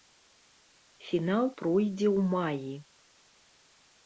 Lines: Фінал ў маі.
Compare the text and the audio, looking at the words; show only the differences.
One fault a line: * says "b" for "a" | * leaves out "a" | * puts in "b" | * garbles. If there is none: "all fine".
* puts in "пройдзе"